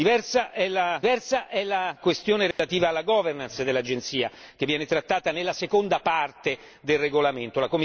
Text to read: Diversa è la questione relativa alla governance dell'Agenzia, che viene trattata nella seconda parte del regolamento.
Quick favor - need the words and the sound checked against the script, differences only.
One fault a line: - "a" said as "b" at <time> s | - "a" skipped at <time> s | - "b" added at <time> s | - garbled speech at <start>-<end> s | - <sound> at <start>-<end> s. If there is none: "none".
- "diversa è la" added at 1.0 s
- dropout at 2.5-2.6 s